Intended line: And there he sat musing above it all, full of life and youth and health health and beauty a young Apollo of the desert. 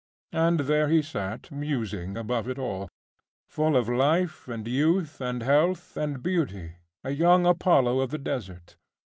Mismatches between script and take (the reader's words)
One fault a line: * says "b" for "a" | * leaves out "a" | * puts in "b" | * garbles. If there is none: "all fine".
* leaves out "health"